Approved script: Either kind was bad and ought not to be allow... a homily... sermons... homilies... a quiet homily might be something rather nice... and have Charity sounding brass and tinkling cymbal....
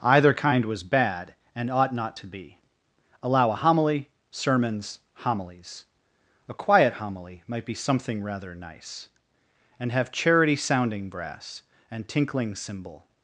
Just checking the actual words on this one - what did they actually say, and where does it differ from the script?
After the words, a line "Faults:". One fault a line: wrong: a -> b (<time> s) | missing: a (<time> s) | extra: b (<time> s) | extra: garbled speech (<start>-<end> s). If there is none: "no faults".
Either kind was bad and ought not to be allow... a homily... sermons... homilies... a quiet homily might be something rather nice... and have Charity sounding brass and tinkling cymbal....
Faults:
no faults